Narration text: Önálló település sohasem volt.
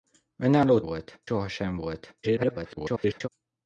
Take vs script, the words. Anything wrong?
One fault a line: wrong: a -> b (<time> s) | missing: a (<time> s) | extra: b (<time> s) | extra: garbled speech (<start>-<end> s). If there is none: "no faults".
wrong: település -> volt (0.8 s)
extra: garbled speech (2.2-3.3 s)